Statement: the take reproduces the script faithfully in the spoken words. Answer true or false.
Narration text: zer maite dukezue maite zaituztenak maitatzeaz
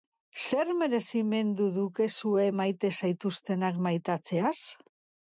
false